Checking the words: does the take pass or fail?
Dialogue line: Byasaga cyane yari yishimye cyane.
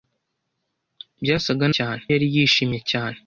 pass